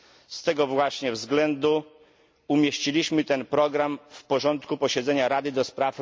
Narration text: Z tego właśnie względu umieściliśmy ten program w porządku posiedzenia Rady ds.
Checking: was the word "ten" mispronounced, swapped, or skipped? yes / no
no